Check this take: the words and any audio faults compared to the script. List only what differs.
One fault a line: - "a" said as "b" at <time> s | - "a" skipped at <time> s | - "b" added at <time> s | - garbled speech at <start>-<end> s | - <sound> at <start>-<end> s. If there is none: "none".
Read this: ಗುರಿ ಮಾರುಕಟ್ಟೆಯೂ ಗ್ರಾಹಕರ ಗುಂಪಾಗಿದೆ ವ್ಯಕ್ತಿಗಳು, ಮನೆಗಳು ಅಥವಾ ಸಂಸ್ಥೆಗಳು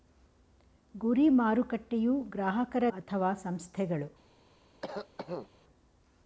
- "ಗುಂಪಾಗಿದೆ ವ್ಯಕ್ತಿಗಳು ಮನೆಗಳು" skipped at 2.8 s
- cough at 4.8-5.5 s